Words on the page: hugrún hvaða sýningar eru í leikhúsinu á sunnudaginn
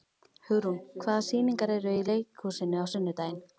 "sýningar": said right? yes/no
yes